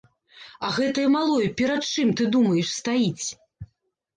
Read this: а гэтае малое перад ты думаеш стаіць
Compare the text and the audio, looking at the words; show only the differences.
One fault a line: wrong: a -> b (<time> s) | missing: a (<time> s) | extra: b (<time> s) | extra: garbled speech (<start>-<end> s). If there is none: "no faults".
extra: чым (1.9 s)